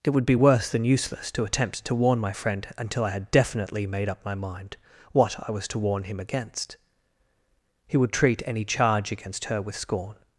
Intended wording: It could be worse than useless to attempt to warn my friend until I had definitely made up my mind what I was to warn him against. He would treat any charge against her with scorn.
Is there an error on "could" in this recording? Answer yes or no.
yes